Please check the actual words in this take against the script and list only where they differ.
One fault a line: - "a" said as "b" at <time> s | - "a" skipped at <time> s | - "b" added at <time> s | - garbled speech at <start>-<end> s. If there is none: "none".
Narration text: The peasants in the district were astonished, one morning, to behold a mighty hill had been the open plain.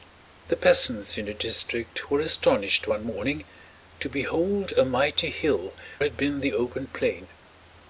none